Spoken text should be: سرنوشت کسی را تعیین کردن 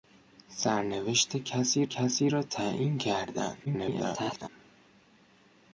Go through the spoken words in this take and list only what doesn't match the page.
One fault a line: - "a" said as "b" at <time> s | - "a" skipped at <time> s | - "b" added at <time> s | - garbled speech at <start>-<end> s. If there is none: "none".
- "کسی" added at 1.8 s
- garbled speech at 3.6-4.5 s